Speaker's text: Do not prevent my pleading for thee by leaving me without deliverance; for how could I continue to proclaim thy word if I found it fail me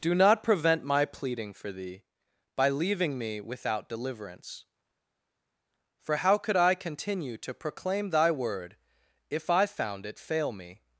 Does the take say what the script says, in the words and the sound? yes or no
yes